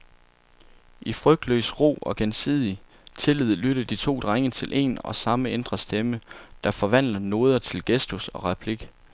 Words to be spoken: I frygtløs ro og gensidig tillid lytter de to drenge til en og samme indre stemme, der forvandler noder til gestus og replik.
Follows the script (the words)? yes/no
yes